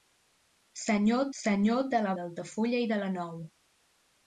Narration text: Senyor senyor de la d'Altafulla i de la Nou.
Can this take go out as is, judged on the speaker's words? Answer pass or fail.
pass